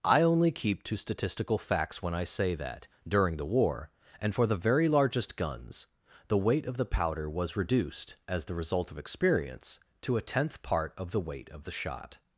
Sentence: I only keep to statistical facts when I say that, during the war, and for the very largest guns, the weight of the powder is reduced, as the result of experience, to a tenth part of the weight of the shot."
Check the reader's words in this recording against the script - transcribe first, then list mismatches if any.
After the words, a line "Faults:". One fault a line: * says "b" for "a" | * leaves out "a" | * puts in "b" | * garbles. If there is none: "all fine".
I only keep to statistical facts when I say that, during the war, and for the very largest guns, the weight of the powder was reduced, as the result of experience, to a tenth part of the weight of the shot."
Faults:
* says "was" for "is"